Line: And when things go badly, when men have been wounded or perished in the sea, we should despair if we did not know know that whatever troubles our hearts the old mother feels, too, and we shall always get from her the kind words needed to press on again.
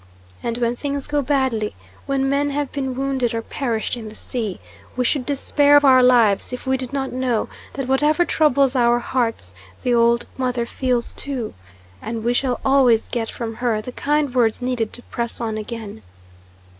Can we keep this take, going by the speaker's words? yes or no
no